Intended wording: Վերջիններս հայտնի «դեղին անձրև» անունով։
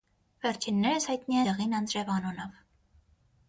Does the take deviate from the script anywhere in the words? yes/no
no